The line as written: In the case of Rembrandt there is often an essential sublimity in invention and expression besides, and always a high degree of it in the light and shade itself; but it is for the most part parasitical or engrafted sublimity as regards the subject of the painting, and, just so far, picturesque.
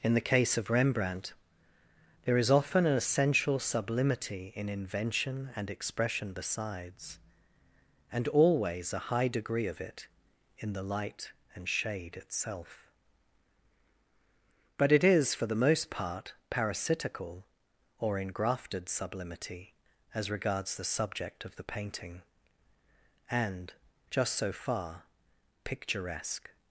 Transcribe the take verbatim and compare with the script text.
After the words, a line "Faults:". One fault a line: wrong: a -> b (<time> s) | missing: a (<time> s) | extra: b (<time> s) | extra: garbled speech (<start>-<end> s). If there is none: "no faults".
In the case of Rembrandt there is often an essential sublimity in invention and expression besides, and always a high degree of it in the light and shade itself; but it is for the most part parasitical or engrafted sublimity as regards the subject of the painting, and, just so far, picturesque.
Faults:
no faults